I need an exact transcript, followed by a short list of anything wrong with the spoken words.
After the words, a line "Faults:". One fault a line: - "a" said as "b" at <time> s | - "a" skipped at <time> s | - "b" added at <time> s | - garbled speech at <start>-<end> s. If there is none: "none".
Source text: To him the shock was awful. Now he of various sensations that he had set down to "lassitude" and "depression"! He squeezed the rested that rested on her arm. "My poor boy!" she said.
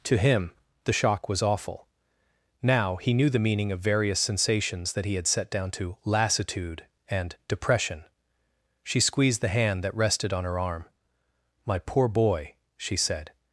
To him the shock was awful. Now he knew the meaning of various sensations that he had set down to "lassitude" and "depression"! She squeezed the hand that rested on her arm. "My poor boy!" she said.
Faults:
- "knew the meaning" added at 3.1 s
- "He" said as "She" at 8.8 s
- "rested" said as "hand" at 9.5 s